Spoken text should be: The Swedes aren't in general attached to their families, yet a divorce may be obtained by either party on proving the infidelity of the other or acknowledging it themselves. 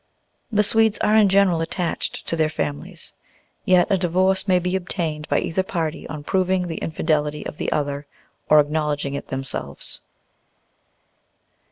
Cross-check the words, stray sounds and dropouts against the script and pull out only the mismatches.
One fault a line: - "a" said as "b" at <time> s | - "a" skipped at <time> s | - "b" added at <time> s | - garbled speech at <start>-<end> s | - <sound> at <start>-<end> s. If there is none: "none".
- "aren't" said as "are" at 1.0 s